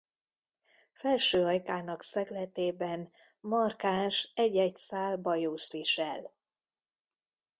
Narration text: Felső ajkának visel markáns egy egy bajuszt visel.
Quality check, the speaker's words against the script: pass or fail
fail